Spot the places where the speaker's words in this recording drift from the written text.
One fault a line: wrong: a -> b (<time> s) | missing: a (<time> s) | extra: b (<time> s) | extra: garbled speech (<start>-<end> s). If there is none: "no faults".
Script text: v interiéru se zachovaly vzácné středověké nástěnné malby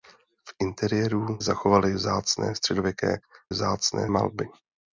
missing: se (1.4 s)
wrong: nástěnné -> vzácné (3.5 s)